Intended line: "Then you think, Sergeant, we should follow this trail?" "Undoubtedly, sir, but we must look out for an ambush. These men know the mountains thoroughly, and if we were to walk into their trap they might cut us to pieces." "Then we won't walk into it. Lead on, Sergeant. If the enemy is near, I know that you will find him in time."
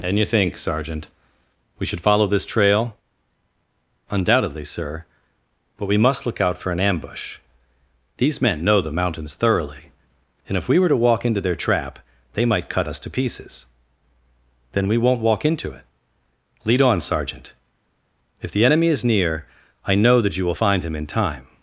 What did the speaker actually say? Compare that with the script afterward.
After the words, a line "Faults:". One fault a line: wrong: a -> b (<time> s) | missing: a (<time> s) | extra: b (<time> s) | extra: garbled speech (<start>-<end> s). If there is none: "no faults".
"And you think, Sergeant, we should follow this trail?" "Undoubtedly, sir, but we must look out for an ambush. These men know the mountains thoroughly, and if we were to walk into their trap they might cut us to pieces." "Then we won't walk into it. Lead on, Sergeant. If the enemy is near, I know that you will find him in time."
Faults:
wrong: Then -> And (0.0 s)